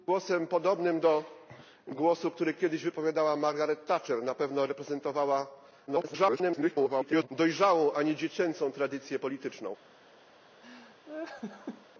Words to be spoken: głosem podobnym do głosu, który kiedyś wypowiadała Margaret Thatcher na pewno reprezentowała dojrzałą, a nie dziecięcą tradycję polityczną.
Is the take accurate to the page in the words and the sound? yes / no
no